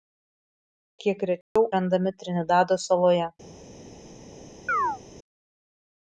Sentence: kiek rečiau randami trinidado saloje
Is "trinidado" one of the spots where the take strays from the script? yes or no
no